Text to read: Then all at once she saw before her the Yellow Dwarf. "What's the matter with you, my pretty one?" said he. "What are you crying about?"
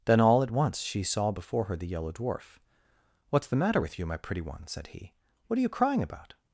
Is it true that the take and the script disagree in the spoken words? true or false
false